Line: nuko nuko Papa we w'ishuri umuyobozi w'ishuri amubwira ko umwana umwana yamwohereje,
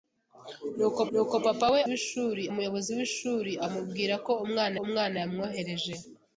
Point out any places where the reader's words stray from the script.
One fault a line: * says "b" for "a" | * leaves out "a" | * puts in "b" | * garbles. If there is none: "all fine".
all fine